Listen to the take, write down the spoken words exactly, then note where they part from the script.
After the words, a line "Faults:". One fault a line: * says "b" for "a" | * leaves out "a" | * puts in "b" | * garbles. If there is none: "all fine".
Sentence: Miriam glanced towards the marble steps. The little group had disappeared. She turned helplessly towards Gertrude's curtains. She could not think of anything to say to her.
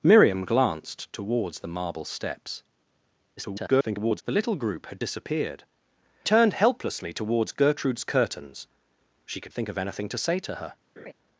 Miriam glanced towards the marble steps. [garbled] The little group had disappeared. Turned helplessly towards Gertrude's curtains. She could think of anything to say to her.
Faults:
* garbles
* leaves out "She"
* leaves out "not"